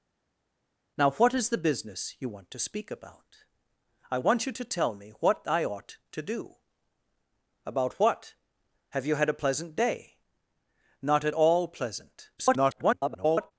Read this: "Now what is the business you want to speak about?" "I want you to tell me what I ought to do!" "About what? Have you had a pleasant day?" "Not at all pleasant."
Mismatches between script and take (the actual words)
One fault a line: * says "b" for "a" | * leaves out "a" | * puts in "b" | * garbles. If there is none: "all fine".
* garbles